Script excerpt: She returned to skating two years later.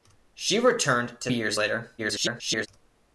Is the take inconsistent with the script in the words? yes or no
yes